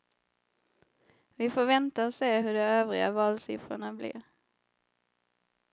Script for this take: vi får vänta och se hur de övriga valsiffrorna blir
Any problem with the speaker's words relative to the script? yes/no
no